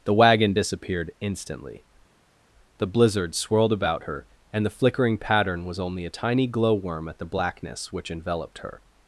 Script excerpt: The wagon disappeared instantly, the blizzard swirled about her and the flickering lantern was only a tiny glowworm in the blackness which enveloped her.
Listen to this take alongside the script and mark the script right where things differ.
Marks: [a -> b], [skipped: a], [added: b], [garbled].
The wagon disappeared instantly, the blizzard swirled about her and the flickering [lantern -> pattern] was only a tiny glowworm [in -> at] the blackness which enveloped her.